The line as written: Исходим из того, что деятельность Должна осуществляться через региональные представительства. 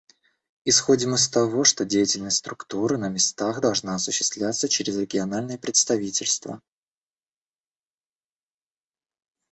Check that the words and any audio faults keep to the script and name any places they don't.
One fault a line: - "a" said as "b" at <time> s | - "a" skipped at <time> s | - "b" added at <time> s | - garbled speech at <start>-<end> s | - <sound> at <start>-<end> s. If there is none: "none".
- "Структуры на местах" added at 2.4 s